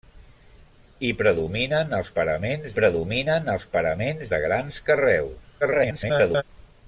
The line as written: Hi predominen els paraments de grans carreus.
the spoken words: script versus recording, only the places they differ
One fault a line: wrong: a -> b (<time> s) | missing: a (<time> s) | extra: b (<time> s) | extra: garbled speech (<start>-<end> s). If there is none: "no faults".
extra: predominen els paraments (2.8 s)
extra: garbled speech (5.6-6.4 s)